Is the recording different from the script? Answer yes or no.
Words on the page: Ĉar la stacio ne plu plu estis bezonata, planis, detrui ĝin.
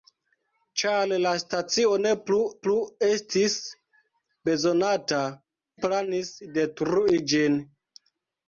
no